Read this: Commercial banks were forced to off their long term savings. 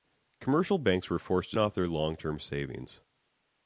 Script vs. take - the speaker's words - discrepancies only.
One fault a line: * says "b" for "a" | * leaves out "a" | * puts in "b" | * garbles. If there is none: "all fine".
all fine